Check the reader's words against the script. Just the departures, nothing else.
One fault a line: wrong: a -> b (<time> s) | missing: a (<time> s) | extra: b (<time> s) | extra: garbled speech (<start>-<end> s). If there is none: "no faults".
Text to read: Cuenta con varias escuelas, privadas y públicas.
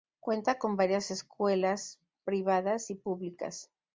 no faults